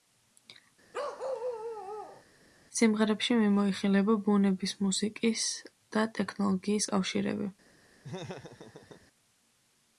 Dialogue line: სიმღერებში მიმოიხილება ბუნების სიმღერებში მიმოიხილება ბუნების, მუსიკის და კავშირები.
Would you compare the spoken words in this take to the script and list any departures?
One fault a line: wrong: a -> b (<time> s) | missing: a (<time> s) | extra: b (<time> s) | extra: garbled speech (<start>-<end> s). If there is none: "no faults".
missing: სიმღერებში მიმოიხილება ბუნების (4.8 s)
extra: ტექნოლოგიის (6.2 s)